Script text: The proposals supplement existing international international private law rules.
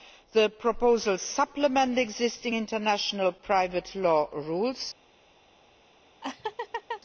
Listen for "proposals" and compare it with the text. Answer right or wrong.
right